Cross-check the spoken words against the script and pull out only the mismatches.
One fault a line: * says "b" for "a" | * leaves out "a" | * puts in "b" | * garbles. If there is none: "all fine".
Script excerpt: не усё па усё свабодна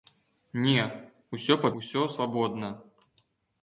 all fine